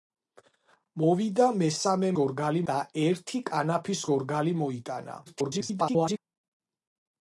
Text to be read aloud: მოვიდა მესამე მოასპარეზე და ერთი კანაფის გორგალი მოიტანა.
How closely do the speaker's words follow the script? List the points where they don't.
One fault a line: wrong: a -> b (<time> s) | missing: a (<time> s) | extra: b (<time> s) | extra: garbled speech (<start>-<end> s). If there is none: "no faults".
wrong: მოასპარეზე -> გორგალი (2.2 s)
extra: garbled speech (5.3-6.2 s)